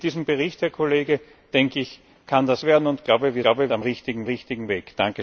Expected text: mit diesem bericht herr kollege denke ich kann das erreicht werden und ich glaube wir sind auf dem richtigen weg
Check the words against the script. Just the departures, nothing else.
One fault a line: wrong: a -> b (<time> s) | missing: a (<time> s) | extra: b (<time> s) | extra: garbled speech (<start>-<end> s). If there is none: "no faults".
missing: erreicht (2.6 s)
wrong: sind -> glaube (3.4 s)
extra: richtigen (4.2 s)